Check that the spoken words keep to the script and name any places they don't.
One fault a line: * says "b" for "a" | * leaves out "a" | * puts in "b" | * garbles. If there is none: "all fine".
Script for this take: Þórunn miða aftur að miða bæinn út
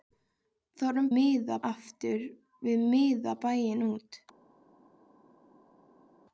all fine